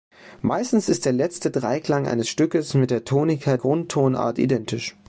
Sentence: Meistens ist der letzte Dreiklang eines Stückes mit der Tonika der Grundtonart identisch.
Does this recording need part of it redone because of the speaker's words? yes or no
yes